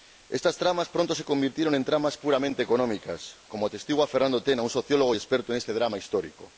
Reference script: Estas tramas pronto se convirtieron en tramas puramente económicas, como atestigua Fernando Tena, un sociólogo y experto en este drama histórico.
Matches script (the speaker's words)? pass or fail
pass